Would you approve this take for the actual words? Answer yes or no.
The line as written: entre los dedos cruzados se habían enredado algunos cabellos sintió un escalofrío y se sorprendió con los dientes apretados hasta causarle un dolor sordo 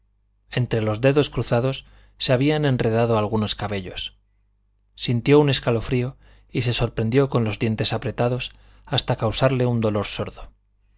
yes